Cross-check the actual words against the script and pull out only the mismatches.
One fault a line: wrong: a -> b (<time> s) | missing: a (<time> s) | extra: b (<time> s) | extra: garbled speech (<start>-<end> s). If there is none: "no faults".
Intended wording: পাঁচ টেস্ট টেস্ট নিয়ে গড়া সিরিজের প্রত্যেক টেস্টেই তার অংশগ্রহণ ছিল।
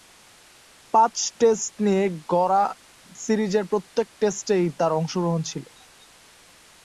missing: টেস্ট (1.7 s)